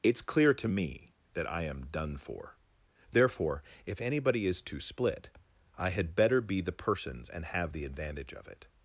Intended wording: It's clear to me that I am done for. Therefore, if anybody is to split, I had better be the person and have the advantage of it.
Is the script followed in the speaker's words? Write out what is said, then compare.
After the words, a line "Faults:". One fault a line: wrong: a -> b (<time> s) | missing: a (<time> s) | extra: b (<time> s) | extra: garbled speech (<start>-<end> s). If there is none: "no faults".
It's clear to me that I am done for. Therefore, if anybody is to split, I had better be the persons and have the advantage of it.
Faults:
wrong: person -> persons (6.7 s)